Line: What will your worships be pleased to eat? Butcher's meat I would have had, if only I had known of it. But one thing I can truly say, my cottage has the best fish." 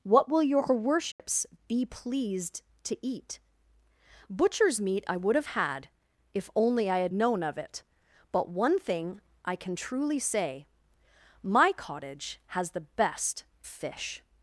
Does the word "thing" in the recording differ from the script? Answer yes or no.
no